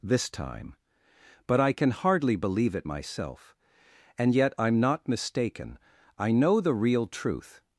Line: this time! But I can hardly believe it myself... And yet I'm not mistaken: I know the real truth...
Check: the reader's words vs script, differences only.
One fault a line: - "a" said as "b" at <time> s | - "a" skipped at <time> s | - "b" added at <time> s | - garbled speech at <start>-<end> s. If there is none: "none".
none